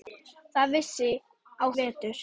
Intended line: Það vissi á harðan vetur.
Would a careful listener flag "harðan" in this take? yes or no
yes